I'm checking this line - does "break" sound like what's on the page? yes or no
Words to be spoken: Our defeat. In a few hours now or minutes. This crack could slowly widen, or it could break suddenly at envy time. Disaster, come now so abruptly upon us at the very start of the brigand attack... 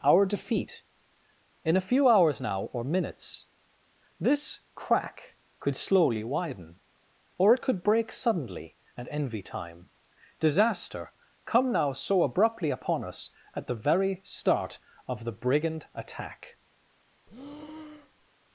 yes